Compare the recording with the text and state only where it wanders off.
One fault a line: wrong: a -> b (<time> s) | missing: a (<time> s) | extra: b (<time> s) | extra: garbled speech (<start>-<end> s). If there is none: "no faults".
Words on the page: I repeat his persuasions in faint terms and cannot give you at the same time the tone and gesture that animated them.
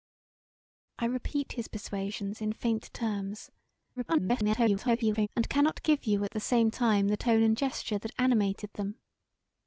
extra: garbled speech (4.0-5.3 s)